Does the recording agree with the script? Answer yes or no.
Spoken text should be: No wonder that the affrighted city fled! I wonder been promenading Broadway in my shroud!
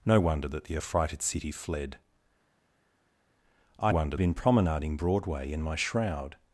yes